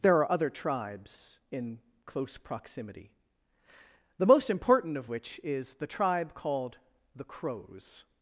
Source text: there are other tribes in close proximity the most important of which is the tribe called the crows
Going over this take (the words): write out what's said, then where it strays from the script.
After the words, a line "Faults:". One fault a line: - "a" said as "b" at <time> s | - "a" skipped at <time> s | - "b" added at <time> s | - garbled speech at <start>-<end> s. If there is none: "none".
there are other tribes in close proximity the most important of which is the tribe called the crows
Faults:
none